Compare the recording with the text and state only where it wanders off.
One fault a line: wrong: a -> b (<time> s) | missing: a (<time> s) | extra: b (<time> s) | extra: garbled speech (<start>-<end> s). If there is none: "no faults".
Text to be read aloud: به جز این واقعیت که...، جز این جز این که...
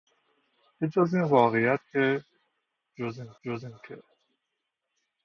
no faults